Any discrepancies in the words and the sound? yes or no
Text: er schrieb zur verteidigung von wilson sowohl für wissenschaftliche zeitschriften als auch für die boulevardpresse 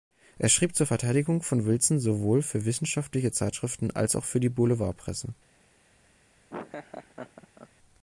yes